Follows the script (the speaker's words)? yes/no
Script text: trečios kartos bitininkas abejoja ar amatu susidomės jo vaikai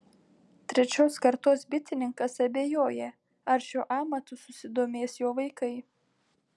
no